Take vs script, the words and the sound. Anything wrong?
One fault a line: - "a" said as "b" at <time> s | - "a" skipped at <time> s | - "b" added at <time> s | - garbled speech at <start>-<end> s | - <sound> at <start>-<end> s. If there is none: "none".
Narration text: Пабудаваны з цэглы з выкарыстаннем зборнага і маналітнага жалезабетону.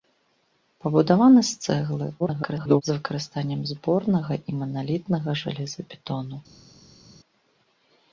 - garbled speech at 2.2-2.8 s